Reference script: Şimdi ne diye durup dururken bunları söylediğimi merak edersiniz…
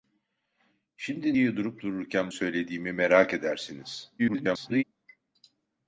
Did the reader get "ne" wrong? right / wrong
wrong